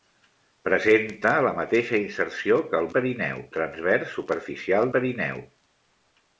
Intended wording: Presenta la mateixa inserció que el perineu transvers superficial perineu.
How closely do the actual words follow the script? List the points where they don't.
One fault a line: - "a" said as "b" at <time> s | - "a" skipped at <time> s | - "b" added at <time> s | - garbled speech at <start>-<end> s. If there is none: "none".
none